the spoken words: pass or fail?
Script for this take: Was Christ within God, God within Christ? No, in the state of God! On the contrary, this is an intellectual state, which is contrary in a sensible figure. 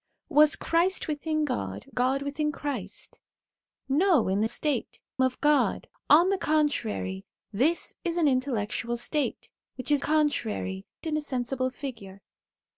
pass